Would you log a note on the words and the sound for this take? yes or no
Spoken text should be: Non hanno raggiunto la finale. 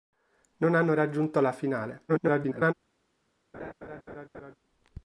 yes